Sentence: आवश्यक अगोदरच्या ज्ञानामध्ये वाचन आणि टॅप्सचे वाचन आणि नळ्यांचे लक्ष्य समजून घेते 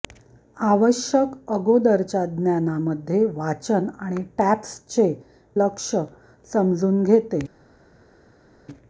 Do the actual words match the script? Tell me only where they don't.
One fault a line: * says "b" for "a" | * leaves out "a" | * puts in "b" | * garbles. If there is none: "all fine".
* leaves out "वाचन आणि नळ्यांचे"